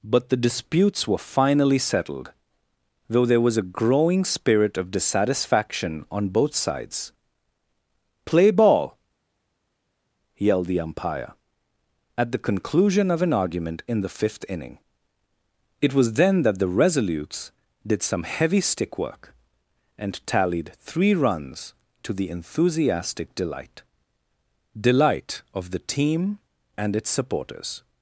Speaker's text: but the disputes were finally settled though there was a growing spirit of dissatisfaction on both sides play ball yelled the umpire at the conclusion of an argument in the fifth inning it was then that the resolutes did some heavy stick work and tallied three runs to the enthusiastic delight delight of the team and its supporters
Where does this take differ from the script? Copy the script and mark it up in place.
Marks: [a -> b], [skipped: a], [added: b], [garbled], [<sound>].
but the disputes were finally settled though there was a growing spirit of dissatisfaction on both sides play ball yelled the umpire at the conclusion of an argument in the fifth inning it was then that the resolutes did some heavy stick work and tallied three runs to the enthusiastic delight delight of the team and its supporters